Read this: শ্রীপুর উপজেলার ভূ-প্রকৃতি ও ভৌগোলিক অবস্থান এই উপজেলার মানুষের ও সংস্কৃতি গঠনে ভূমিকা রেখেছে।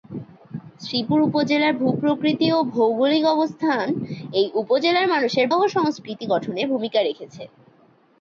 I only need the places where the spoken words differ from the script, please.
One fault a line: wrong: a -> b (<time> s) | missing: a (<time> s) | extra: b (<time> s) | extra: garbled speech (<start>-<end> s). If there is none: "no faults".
no faults